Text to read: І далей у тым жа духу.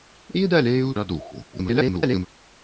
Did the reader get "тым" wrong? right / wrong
wrong